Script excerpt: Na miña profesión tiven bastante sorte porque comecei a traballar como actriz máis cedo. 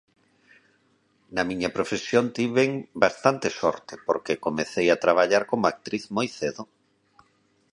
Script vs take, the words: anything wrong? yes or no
yes